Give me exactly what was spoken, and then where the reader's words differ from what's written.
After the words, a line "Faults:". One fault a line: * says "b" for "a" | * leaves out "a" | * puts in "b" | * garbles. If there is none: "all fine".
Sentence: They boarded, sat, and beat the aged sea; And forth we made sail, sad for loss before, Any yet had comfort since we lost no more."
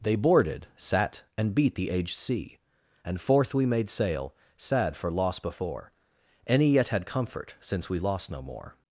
They boarded, sat, and beat the aged sea; And forth we made sail, sad for loss before, Any yet had comfort since we lost no more."
Faults:
all fine